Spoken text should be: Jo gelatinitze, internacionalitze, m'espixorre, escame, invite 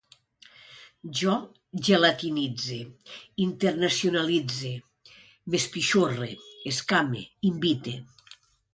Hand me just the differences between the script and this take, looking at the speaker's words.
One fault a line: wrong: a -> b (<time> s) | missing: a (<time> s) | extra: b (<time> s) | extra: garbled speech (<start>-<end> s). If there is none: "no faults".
no faults